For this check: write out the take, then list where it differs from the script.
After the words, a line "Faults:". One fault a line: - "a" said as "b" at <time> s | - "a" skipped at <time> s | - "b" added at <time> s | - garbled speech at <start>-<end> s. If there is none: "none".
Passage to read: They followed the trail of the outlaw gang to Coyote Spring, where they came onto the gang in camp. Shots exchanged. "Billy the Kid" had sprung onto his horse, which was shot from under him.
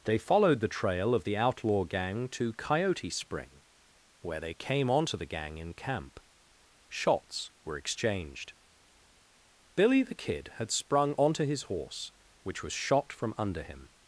They followed the trail of the outlaw gang to Coyote Spring, where they came onto the gang in camp. Shots were exchanged. "Billy the Kid" had sprung onto his horse, which was shot from under him.
Faults:
- "were" added at 7.6 s